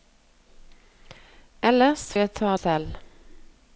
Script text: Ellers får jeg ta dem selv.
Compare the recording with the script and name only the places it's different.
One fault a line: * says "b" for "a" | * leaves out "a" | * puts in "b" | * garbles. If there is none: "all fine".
* leaves out "får"
* leaves out "dem"